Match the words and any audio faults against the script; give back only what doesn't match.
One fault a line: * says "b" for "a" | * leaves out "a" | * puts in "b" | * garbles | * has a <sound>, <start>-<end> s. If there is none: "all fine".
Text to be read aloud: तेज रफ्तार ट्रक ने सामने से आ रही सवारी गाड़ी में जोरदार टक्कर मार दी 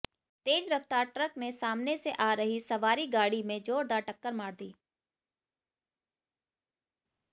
all fine